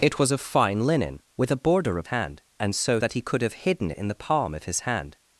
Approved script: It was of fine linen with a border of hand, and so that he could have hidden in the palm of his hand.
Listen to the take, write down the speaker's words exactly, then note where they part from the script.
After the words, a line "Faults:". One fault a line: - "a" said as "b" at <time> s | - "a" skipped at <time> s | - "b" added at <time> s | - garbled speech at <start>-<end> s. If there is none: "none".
It was of fine linen with a border of hand, and so that he could have hidden in the palm of his hand.
Faults:
none